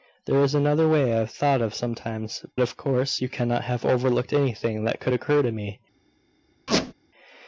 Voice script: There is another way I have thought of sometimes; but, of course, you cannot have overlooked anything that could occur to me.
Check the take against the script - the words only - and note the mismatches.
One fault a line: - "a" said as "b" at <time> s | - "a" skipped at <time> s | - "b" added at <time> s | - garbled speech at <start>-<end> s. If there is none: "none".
- "but" skipped at 2.4 s